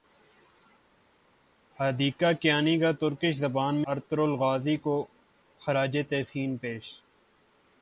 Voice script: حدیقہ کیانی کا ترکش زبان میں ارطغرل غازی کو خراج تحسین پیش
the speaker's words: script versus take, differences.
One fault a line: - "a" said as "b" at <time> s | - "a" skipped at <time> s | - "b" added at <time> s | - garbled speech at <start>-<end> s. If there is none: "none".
- "میں" skipped at 3.8 s